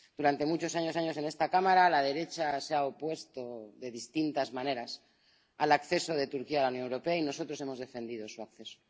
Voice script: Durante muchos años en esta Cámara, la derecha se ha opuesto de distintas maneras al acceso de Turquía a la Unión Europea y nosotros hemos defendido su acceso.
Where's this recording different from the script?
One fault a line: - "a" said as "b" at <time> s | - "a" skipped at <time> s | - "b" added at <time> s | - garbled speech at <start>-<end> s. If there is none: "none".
- "años" added at 1.0 s